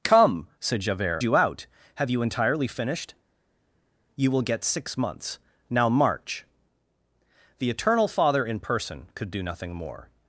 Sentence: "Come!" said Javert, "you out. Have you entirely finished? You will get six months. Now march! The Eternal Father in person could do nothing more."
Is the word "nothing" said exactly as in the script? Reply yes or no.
yes